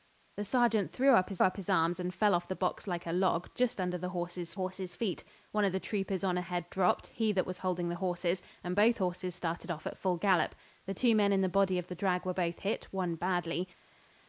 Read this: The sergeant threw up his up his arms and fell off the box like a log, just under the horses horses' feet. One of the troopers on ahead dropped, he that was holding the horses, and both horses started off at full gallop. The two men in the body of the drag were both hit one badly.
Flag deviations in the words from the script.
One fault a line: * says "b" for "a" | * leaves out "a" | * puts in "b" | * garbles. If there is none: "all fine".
all fine